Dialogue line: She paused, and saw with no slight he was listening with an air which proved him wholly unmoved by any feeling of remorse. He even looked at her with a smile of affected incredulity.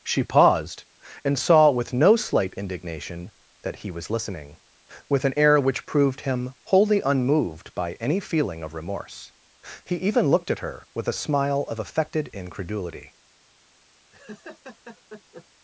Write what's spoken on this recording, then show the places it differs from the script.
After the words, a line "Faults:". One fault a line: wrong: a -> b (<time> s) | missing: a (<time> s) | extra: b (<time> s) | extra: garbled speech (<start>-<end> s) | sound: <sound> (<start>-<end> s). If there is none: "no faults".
She paused, and saw with no slight indignation that he was listening with an air which proved him wholly unmoved by any feeling of remorse. He even looked at her with a smile of affected incredulity.
Faults:
extra: indignation that (2.5 s)
sound: laugh (14.1-15.5 s)